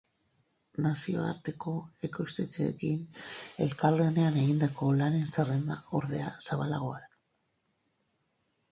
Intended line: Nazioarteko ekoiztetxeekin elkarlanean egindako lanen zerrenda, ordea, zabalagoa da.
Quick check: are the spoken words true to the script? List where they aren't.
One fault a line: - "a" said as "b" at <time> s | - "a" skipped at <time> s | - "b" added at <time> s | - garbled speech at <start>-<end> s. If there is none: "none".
none